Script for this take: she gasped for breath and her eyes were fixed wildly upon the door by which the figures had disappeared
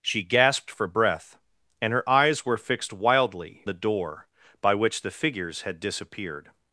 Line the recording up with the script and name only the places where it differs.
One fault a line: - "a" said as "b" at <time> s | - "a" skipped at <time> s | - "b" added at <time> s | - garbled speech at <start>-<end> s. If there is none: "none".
- "upon" skipped at 3.7 s